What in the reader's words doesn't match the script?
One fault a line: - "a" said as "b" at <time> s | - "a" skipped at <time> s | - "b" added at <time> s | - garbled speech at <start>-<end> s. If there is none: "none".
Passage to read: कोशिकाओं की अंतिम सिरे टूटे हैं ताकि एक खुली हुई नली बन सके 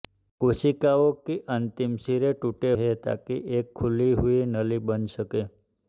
none